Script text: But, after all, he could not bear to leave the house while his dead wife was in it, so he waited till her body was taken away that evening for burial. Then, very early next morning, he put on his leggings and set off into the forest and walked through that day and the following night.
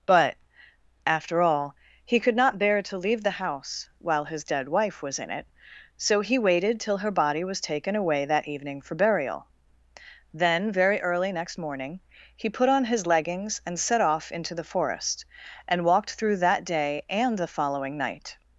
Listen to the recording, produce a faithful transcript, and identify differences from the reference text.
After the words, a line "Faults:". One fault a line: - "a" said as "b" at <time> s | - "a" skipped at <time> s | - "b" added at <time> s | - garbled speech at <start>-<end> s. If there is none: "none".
But, after all, he could not bear to leave the house while his dead wife was in it, so he waited till her body was taken away that evening for burial. Then, very early next morning, he put on his leggings and set off into the forest and walked through that day and the following night.
Faults:
none